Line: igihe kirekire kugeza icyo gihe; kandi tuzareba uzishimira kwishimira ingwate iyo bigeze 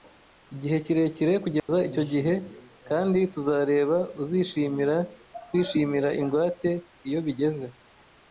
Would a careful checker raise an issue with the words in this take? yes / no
no